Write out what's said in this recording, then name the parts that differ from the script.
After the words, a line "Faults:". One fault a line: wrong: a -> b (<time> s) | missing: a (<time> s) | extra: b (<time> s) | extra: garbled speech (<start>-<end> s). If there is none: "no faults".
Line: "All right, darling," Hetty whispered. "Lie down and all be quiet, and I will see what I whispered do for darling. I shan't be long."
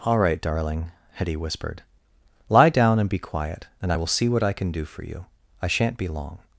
"All right, darling," Hetty whispered. "Lie down and be quiet, and I will see what I can do for you. I shan't be long."
Faults:
missing: all (3.1 s)
wrong: whispered -> can (4.5 s)
wrong: darling -> you (5.0 s)